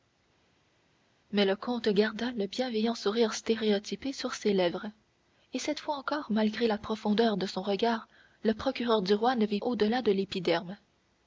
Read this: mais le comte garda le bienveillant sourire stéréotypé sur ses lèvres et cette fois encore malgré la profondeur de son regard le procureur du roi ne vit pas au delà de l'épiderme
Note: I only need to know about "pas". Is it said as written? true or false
false